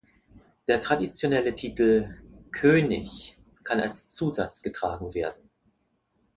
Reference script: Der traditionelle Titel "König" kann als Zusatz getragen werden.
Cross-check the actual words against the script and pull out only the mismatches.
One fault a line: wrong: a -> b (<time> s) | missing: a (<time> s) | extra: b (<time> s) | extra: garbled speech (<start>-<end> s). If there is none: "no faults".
no faults